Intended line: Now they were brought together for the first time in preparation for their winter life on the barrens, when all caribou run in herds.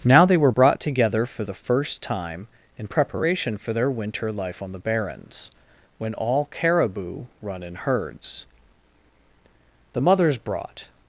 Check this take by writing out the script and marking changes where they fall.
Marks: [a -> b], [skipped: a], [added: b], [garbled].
Now they were brought together for the first time in preparation for their winter life on the barrens, when all caribou run in herds. [added: The mothers brought]